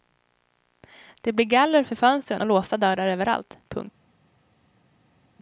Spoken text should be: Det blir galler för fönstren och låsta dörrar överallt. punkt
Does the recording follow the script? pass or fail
pass